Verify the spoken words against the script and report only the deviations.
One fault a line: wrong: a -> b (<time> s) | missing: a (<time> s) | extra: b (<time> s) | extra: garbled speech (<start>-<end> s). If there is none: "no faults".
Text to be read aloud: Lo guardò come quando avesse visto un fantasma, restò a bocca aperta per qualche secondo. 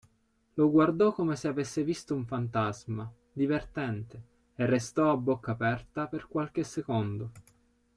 wrong: quando -> se (1.4 s)
extra: divertente e (3.3 s)